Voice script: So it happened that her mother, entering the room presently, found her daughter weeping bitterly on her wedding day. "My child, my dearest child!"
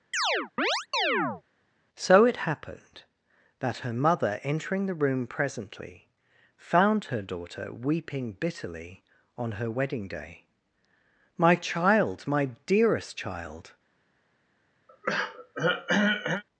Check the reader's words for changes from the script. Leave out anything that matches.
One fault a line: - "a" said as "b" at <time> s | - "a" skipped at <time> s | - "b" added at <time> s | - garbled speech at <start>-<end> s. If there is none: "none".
none